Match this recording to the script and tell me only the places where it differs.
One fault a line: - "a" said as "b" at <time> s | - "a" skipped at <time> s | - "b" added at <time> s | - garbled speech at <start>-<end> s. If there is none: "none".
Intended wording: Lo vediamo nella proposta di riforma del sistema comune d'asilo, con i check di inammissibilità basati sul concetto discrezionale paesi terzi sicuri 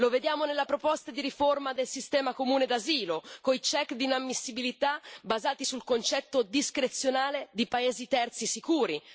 - "di" added at 7.5 s